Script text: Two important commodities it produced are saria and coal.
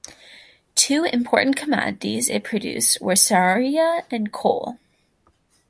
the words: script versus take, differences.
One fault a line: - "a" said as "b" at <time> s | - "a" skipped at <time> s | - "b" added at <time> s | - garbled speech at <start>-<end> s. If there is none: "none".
- "are" said as "were" at 3.0 s